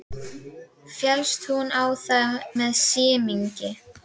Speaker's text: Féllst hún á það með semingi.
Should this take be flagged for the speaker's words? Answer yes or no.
no